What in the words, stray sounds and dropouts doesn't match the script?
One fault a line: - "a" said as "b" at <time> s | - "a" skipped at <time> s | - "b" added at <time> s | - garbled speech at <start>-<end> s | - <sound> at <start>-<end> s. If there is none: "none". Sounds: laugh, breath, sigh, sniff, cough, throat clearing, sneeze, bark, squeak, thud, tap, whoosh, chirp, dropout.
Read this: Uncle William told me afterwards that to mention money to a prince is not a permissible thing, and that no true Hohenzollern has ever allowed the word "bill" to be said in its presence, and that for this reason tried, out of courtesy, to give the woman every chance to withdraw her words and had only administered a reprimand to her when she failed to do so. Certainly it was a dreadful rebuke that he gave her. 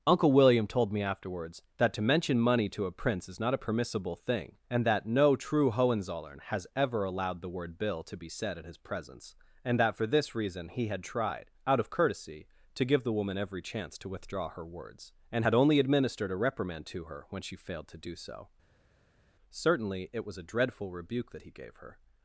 - "its" said as "his" at 8.7 s
- "he had" added at 10.7 s